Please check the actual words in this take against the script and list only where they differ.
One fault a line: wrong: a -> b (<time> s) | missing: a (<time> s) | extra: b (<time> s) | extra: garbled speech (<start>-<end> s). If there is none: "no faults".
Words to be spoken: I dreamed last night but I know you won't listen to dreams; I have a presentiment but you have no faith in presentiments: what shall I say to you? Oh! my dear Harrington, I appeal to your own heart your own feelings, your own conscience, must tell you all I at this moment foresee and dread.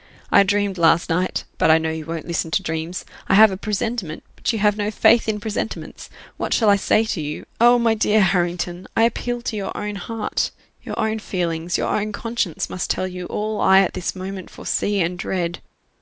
no faults